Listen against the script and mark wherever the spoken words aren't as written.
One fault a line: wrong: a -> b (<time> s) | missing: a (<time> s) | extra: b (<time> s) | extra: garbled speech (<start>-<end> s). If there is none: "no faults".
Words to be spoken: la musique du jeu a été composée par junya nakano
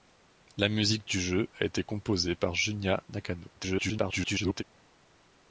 extra: garbled speech (3.6-4.6 s)